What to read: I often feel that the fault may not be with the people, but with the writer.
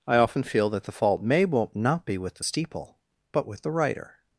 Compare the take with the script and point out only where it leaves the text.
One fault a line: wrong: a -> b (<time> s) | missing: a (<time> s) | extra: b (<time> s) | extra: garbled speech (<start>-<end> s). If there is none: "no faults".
wrong: people -> steeple (2.4 s)